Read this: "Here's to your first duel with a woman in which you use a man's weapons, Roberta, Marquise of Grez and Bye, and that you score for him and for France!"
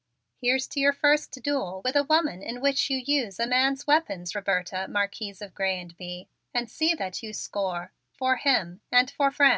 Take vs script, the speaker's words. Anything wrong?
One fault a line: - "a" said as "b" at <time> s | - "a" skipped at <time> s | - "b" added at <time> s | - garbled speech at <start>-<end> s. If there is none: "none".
- "see" added at 6.7 s